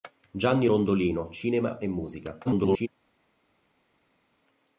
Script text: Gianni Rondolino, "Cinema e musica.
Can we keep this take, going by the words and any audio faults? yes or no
no